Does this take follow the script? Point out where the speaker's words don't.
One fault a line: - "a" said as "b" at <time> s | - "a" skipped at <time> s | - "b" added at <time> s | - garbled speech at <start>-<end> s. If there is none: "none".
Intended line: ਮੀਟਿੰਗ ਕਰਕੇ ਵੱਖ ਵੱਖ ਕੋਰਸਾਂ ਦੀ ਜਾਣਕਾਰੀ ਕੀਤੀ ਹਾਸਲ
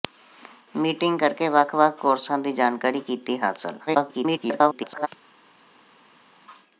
- garbled speech at 3.9-5.1 s